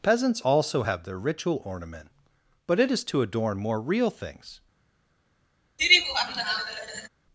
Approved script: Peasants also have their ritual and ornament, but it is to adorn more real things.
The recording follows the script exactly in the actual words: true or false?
false